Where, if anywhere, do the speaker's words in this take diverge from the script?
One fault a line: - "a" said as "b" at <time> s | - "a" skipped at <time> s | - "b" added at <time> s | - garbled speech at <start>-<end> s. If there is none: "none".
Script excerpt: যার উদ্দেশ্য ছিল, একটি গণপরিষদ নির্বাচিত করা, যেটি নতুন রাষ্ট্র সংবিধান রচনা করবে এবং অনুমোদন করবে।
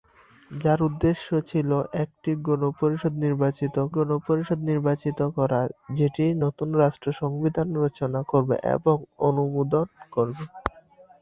- "গণপরিষদ নির্বাচিত" added at 4.0 s